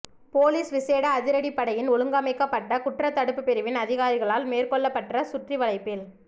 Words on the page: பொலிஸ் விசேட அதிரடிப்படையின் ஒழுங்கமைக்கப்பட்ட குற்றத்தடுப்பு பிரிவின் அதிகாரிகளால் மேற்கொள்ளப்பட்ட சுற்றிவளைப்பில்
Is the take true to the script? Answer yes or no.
yes